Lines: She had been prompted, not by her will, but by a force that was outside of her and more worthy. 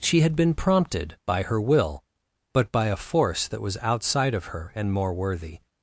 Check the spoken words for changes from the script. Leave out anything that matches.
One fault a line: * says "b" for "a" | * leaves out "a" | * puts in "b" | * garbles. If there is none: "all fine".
* leaves out "not"